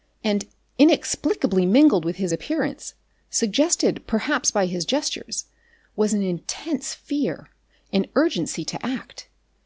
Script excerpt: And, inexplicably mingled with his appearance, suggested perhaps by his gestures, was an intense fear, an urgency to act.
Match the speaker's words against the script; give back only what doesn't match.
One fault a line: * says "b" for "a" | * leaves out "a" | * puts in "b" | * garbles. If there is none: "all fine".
all fine